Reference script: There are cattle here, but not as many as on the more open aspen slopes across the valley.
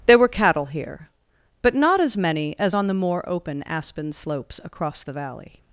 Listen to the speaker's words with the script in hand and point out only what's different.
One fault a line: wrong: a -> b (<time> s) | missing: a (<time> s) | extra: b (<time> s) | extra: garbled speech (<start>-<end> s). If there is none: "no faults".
wrong: are -> were (0.2 s)